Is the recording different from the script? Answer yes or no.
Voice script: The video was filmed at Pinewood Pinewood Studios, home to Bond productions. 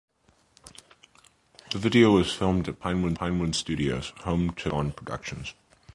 no